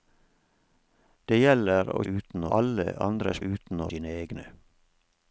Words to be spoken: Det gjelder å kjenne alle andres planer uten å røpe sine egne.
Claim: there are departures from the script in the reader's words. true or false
true